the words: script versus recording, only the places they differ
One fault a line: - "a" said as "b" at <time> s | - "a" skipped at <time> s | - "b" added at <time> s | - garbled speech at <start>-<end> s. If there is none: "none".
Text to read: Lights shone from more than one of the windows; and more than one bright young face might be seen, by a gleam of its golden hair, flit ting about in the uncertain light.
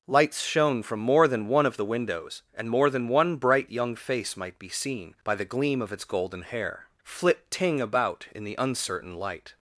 - "a" said as "the" at 5.3 s